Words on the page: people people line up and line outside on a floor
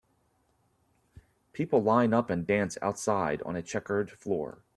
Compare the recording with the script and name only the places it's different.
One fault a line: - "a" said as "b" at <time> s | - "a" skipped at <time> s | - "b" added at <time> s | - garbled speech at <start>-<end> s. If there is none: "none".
- "people" skipped at 1.8 s
- "line" said as "dance" at 2.4 s
- "checkered" added at 3.6 s